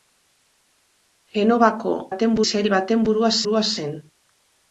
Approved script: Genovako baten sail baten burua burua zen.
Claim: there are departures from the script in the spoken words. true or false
false